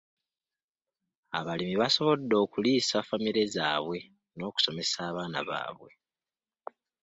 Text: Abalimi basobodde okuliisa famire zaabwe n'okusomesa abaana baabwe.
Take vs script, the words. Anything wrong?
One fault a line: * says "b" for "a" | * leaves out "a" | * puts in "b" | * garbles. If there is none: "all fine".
all fine